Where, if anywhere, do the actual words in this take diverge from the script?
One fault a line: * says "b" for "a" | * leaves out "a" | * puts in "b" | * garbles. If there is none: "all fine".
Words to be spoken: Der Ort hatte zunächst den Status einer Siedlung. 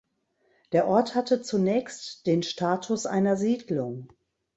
all fine